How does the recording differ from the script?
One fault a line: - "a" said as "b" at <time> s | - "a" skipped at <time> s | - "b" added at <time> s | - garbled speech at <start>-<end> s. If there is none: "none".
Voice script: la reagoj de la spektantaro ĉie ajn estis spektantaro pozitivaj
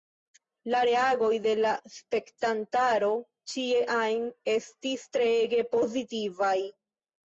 - "spektantaro" said as "treege" at 5.2 s